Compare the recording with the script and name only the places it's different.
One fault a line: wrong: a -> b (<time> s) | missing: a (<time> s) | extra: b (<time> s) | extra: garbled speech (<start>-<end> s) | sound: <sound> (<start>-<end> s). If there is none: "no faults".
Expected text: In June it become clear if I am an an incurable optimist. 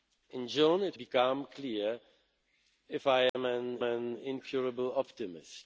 sound: dropout (3.3-3.3 s)